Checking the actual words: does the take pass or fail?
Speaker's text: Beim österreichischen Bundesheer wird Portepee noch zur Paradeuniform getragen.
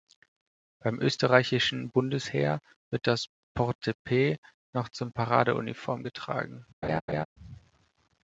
fail